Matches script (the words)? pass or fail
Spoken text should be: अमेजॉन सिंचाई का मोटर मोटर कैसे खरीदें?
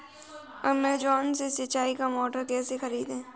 fail